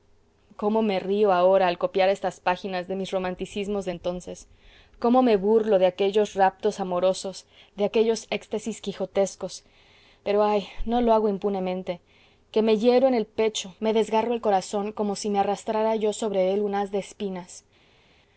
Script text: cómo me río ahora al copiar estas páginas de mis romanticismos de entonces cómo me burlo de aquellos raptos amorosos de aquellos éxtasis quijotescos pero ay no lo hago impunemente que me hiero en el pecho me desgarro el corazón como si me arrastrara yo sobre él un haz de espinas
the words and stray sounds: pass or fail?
pass